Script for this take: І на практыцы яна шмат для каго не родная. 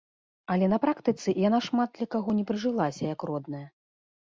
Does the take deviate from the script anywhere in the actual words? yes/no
yes